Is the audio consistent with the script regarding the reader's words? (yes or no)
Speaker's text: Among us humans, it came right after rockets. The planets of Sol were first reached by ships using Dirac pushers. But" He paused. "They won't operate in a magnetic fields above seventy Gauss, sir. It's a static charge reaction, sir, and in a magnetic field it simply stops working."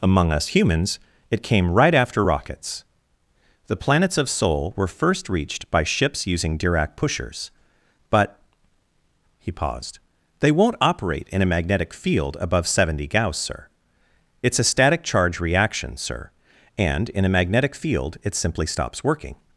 no